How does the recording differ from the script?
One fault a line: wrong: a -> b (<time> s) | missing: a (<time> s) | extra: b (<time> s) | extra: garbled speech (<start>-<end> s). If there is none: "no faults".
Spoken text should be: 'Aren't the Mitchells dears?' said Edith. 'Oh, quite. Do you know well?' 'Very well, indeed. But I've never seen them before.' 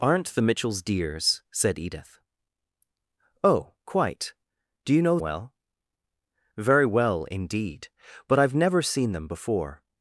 no faults